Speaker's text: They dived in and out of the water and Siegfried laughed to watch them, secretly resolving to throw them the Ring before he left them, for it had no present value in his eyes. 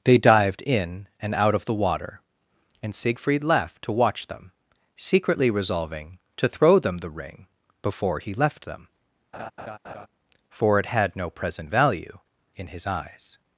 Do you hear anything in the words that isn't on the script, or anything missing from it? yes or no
yes